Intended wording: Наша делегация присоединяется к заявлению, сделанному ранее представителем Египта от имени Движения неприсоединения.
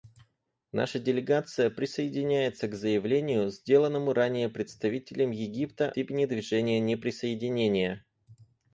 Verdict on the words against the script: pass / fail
fail